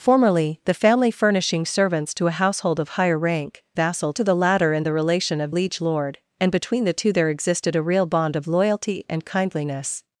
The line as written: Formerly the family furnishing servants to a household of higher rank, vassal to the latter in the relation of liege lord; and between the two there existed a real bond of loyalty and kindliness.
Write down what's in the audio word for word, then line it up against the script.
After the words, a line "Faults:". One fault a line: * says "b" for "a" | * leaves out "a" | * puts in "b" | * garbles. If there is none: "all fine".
Formerly the family furnishing servants to a household of higher rank, vassal to the latter in the relation of liege lord; and between the two there existed a real bond of loyalty and kindliness.
Faults:
all fine